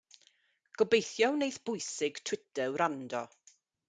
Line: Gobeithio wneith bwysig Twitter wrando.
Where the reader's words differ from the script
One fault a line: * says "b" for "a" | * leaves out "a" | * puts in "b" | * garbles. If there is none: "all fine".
all fine